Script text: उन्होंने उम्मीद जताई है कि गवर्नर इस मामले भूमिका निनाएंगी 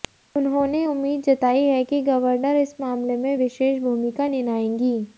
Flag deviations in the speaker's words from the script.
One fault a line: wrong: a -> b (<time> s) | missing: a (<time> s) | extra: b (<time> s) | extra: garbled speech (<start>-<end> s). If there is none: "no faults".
extra: में विशेष (3.2 s)